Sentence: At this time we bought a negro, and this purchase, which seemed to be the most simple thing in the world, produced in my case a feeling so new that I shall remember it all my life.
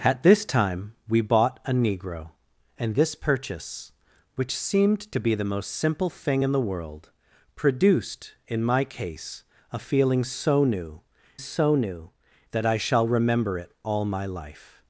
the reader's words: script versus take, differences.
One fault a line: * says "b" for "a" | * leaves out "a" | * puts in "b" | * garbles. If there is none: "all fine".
* puts in "so new"